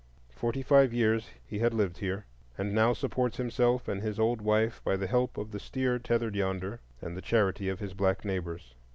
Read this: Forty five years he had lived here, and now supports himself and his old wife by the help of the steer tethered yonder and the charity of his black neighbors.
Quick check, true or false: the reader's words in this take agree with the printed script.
true